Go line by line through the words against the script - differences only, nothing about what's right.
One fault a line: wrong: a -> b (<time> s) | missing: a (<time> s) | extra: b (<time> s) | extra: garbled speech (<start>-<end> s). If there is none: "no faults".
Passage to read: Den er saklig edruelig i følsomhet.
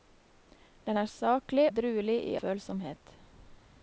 no faults